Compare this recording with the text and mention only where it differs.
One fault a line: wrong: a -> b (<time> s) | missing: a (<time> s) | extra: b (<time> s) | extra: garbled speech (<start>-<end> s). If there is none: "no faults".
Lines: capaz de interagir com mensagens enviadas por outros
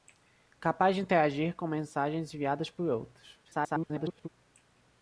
extra: garbled speech (3.4-4.3 s)